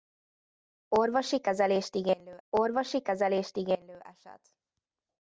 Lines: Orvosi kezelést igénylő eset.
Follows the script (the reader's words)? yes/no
no